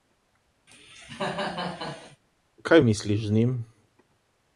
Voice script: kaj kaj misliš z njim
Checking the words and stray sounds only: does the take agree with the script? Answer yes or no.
no